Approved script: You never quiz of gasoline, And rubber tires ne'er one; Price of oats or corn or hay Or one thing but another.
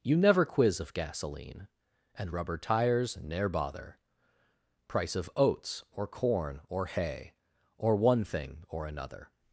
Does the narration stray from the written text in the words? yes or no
yes